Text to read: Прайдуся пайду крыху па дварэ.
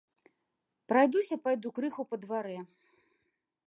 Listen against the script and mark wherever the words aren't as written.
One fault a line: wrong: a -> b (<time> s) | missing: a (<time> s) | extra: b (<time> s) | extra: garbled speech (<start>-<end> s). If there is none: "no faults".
no faults